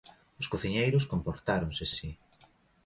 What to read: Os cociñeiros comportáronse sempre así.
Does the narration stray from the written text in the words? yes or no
yes